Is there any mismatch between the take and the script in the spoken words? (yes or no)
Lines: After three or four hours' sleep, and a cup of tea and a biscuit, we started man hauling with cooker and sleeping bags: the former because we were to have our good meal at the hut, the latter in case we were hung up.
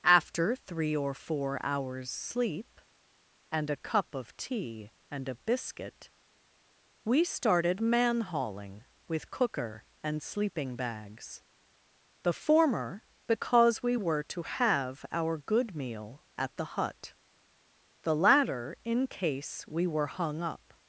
no